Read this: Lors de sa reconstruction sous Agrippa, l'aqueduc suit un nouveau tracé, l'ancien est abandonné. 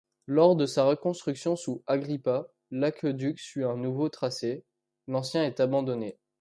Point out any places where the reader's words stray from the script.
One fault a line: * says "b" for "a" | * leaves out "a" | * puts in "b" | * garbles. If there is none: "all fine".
all fine